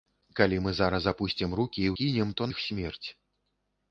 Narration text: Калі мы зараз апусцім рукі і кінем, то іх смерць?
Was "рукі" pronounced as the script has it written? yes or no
yes